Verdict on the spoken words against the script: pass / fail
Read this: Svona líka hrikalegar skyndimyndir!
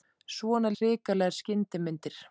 fail